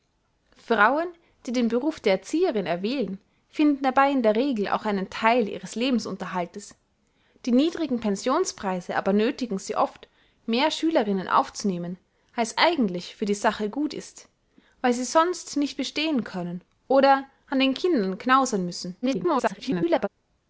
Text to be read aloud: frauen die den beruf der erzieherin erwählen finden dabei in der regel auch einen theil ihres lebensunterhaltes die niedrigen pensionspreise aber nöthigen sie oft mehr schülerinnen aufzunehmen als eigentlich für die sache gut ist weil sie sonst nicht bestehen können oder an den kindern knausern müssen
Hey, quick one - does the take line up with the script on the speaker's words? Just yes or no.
no